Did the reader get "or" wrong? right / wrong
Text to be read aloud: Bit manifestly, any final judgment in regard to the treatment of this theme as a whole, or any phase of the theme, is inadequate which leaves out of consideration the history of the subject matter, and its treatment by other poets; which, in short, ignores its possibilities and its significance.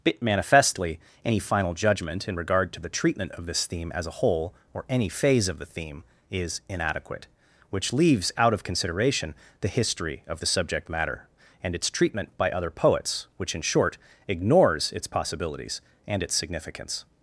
right